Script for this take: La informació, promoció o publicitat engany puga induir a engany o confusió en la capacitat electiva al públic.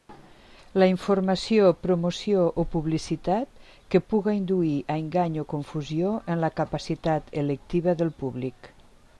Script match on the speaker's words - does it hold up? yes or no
no